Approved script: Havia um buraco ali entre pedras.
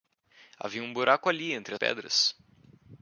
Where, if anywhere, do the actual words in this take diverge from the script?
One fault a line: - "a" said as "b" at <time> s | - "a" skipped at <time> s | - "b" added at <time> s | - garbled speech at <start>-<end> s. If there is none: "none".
none